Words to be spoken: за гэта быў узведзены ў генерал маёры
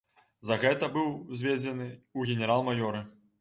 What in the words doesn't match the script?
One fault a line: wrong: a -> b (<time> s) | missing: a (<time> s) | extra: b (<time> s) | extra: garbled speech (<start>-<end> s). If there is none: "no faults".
no faults